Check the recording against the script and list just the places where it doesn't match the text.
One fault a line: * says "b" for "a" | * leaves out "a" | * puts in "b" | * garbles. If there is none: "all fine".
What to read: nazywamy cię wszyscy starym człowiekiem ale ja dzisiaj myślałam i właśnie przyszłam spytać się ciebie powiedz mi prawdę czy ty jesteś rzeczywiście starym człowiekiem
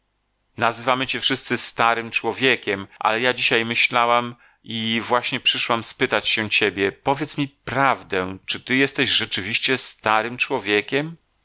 all fine